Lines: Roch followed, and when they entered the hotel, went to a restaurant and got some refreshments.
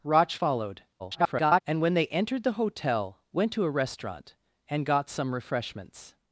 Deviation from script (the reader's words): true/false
true